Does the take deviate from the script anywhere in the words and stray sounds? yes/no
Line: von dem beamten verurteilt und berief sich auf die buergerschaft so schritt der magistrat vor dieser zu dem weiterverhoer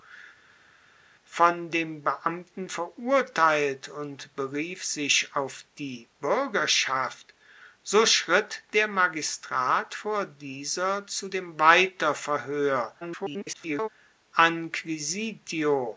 yes